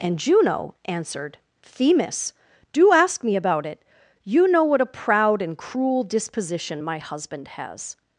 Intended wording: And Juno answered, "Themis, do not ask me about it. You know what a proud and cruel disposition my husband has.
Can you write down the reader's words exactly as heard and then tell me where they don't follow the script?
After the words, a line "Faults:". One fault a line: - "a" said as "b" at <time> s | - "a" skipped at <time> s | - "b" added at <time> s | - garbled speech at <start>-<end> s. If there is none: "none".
And Juno answered, "Themis, do ask me about it. You know what a proud and cruel disposition my husband has.
Faults:
- "not" skipped at 2.9 s